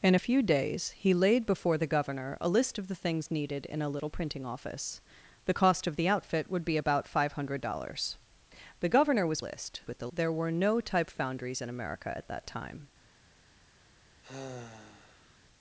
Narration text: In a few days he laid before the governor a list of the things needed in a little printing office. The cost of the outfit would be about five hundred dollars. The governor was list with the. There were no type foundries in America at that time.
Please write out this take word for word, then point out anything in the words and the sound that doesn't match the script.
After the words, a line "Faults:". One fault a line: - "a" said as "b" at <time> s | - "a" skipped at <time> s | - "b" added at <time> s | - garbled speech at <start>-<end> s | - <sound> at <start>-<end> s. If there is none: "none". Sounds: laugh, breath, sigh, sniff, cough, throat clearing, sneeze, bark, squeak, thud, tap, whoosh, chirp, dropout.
In a few days he laid before the governor a list of the things needed in a little printing office. The cost of the outfit would be about five hundred dollars. The governor was list with the. There were no type foundries in America at that time.
Faults:
- sigh at 14.2-15.4 s